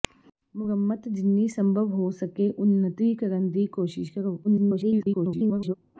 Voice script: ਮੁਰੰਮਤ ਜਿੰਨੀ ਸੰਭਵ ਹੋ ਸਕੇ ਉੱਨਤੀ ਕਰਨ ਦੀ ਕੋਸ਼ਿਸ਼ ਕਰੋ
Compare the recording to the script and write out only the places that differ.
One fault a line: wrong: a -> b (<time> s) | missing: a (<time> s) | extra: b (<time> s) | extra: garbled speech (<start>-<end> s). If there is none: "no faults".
extra: garbled speech (4.4-5.7 s)